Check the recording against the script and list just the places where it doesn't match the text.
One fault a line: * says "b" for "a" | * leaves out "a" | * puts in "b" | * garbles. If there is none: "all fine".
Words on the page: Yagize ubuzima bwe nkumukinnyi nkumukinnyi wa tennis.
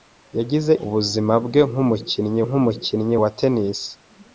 all fine